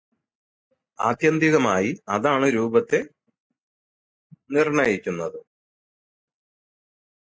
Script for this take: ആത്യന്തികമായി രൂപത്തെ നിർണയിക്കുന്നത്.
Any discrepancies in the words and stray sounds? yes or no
yes